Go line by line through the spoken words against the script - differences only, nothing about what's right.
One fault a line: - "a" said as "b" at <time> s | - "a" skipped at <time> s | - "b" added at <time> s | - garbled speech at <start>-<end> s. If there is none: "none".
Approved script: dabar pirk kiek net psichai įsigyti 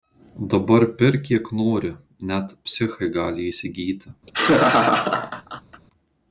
- "nori" added at 1.6 s
- "gali" added at 3.2 s